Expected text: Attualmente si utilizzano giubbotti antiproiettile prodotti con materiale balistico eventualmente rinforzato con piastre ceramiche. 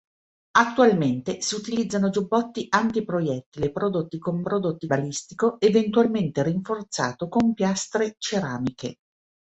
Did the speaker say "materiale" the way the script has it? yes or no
no